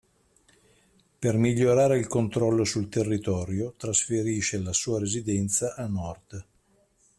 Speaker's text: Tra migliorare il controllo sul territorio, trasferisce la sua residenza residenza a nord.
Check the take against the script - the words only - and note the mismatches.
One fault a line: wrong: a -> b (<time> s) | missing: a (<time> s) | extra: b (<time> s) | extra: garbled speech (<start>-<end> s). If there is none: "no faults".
wrong: Tra -> Per (1.2 s)
missing: residenza (5.8 s)